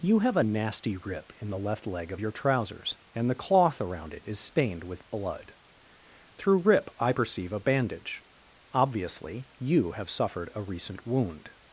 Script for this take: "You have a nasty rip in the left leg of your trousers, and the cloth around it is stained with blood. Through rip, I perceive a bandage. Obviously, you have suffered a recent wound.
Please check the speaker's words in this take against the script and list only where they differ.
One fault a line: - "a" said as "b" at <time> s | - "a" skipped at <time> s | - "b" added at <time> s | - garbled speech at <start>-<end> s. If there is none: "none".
none